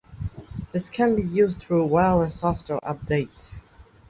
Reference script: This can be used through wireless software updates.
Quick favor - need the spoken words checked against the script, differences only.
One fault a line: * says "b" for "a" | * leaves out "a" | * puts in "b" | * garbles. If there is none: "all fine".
all fine